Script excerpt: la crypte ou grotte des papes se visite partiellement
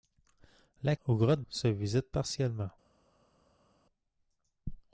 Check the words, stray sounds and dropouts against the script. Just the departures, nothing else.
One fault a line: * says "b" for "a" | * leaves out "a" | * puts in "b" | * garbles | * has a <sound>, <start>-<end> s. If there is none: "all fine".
* leaves out "crypte"
* leaves out "des papes"